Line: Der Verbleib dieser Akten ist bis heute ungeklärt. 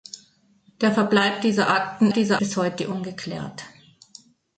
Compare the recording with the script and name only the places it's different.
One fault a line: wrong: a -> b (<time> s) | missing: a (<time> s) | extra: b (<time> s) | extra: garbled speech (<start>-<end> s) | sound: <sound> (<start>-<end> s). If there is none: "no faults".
wrong: ist -> dieser (2.1 s)